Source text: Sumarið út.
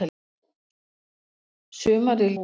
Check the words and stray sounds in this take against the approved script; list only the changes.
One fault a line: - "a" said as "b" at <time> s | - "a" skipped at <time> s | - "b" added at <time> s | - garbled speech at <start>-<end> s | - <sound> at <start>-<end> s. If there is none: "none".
none